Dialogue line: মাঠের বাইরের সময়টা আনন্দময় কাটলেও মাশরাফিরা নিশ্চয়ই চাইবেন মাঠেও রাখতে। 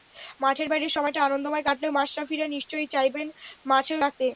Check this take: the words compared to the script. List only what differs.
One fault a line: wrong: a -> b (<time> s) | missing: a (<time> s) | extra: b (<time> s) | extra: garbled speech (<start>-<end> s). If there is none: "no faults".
no faults